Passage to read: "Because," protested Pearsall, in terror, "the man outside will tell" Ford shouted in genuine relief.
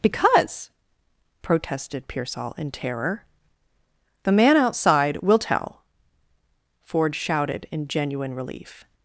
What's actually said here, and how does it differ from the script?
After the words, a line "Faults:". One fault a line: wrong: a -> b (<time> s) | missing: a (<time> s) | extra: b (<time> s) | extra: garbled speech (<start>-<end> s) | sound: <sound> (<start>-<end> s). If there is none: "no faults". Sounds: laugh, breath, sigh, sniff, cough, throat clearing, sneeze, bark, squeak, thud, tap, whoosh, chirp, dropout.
"Because," protested Pearsall, in terror, "the man outside will tell" Ford shouted in genuine relief.
Faults:
no faults